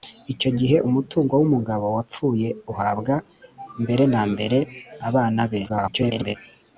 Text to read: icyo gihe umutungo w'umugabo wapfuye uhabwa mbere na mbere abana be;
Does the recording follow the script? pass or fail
fail